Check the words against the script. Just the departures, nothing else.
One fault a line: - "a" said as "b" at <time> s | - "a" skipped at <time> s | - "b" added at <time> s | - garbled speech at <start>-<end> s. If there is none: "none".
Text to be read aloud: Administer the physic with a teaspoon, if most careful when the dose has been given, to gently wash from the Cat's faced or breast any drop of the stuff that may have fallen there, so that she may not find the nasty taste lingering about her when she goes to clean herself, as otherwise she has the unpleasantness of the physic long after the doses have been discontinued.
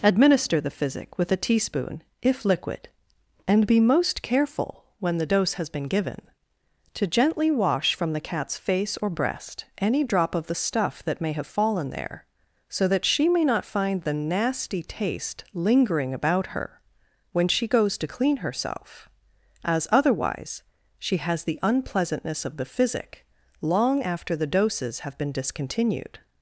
- "liquid and be" added at 2.4 s
- "faced" said as "face" at 8.6 s